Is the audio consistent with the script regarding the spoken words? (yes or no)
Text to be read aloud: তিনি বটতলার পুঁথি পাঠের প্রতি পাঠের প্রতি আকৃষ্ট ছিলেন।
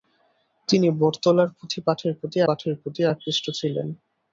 yes